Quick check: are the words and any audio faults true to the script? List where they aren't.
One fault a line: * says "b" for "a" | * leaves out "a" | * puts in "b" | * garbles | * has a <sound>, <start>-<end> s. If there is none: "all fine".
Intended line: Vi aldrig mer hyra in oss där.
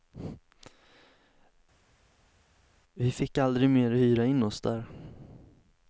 * puts in "fick"